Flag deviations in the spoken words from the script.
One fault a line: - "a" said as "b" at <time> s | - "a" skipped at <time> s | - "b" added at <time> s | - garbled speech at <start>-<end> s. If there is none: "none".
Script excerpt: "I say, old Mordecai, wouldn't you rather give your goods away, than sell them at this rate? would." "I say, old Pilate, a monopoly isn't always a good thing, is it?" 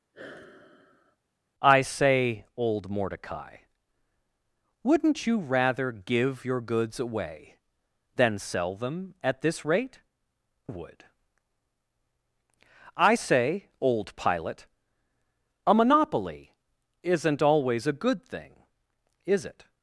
none